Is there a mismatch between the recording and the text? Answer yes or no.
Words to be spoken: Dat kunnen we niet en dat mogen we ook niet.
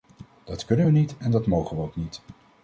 no